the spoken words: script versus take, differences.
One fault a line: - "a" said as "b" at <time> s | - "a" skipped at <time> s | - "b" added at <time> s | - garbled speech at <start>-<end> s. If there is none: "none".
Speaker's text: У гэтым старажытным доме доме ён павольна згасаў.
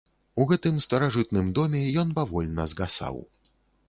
- "доме" skipped at 1.8 s